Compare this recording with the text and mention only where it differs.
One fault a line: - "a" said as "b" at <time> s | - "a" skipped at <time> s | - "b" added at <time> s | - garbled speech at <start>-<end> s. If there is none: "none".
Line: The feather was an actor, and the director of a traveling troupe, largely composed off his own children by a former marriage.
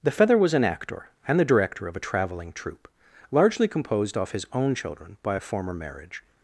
none